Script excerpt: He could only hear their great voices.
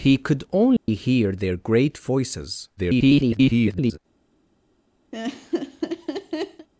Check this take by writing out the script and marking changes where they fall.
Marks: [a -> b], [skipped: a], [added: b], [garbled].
He could only hear their great voices. [garbled]